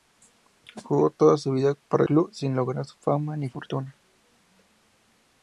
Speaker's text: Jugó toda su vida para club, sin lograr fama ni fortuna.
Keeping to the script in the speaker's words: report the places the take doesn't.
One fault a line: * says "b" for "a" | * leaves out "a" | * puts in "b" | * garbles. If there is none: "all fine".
all fine